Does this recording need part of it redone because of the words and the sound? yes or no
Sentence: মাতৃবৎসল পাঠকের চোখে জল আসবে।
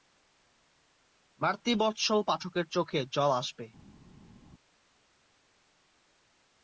no